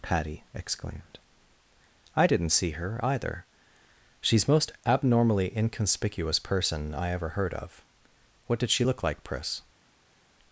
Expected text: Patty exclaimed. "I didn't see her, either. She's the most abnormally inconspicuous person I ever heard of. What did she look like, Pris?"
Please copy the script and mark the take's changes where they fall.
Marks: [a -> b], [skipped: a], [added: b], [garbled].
Patty exclaimed. "I didn't see her, either. She's [skipped: the] most abnormally inconspicuous person I ever heard of. What did she look like, Pris?"